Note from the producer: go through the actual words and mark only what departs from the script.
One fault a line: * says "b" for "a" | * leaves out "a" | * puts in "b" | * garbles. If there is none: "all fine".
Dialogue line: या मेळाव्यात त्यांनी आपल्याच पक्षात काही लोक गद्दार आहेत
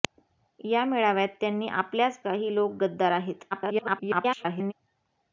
* leaves out "पक्षात"
* garbles